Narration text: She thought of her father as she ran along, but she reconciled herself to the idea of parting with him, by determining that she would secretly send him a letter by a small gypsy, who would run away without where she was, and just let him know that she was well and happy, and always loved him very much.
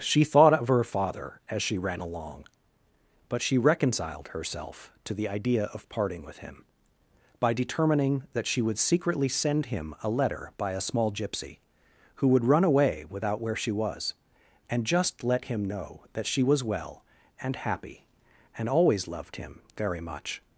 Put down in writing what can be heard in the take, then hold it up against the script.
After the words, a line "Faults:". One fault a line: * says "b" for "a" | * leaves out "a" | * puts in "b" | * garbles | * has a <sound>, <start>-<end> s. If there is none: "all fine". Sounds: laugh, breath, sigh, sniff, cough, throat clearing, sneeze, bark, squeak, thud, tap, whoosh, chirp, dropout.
She thought of her father as she ran along, but she reconciled herself to the idea of parting with him, by determining that she would secretly send him a letter by a small gypsy, who would run away without where she was, and just let him know that she was well and happy, and always loved him very much.
Faults:
all fine